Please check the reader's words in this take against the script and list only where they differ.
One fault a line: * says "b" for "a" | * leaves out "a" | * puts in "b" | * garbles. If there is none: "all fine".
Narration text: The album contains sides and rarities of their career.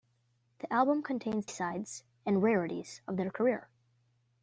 all fine